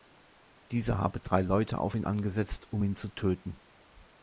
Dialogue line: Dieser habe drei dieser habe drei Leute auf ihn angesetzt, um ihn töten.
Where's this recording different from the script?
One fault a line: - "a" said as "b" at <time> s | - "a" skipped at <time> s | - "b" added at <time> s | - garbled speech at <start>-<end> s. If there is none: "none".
- "dieser habe drei" skipped at 1.4 s
- "zu" added at 3.0 s